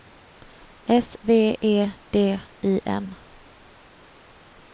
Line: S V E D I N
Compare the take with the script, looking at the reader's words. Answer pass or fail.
pass